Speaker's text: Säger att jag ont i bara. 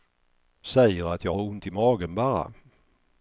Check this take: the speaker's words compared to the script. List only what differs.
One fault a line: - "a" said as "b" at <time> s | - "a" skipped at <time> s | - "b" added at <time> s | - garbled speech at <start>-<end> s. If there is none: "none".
- "har" added at 1.3 s
- "magen" added at 1.7 s